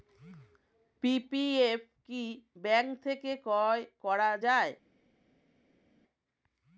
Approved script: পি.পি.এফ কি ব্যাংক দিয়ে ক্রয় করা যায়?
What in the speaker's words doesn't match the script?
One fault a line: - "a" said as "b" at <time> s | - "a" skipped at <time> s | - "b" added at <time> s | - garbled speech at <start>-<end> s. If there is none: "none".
- "দিয়ে" said as "থেকে" at 3.0 s